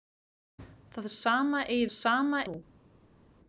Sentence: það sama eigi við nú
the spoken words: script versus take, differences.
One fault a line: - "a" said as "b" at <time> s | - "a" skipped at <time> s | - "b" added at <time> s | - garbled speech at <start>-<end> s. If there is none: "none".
- "við" said as "sama" at 1.9 s